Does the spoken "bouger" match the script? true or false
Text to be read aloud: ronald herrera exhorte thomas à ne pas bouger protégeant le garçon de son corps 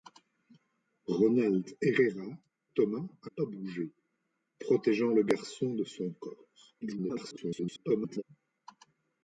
true